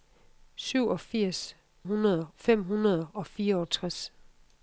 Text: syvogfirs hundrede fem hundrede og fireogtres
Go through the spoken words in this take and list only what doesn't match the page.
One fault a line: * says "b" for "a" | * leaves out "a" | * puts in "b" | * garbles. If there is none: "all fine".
all fine